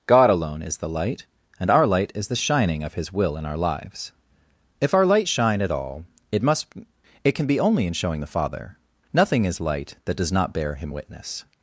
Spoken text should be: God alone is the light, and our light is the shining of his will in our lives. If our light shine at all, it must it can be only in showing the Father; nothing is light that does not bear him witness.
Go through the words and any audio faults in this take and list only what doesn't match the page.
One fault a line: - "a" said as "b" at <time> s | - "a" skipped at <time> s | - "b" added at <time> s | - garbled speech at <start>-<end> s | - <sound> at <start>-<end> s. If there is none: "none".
none